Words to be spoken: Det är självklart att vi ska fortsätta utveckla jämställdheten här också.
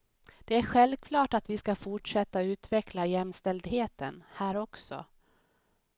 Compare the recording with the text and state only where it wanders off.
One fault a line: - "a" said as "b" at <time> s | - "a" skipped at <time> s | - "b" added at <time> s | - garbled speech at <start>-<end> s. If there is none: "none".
none